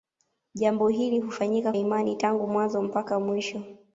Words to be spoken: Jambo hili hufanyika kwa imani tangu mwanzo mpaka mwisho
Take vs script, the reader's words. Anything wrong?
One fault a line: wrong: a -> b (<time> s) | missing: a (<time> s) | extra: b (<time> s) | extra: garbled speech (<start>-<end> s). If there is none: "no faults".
missing: kwa (1.7 s)